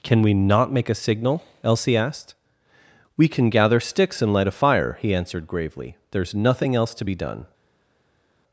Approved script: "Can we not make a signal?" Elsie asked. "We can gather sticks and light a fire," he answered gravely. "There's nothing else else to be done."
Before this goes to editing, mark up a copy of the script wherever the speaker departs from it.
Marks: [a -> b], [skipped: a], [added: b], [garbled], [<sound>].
"Can we not make a signal?" Elsie asked. "We can gather sticks and light a fire," he answered gravely. "There's nothing else [skipped: else] to be done."